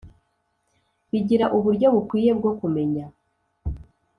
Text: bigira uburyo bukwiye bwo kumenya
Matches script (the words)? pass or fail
pass